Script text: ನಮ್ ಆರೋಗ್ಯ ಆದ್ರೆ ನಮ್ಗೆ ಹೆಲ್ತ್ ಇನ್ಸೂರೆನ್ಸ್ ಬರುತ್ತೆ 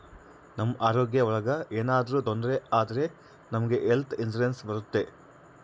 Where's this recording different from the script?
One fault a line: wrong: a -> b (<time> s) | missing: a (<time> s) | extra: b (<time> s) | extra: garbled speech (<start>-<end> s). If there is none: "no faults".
extra: ಒಳಗ ಏನಾದ್ರೂ ತೊಂದ್ರೆ (1.3 s)